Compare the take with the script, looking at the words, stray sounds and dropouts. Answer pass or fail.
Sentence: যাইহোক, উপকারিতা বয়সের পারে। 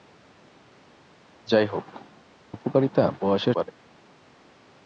pass